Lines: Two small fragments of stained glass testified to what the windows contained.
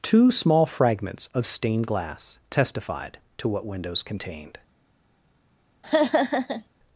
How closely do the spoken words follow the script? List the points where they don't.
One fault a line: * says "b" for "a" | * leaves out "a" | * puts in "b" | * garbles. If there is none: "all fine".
* leaves out "the"